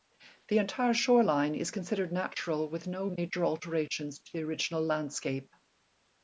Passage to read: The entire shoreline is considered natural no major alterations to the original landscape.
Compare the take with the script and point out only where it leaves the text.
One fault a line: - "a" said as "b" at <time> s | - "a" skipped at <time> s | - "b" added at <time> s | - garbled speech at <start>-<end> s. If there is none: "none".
- "with" added at 2.7 s